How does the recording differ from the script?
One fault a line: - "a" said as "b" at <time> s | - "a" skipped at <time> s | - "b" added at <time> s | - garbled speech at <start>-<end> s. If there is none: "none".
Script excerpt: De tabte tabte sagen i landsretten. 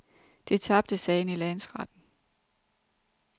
- "tabte" skipped at 1.0 s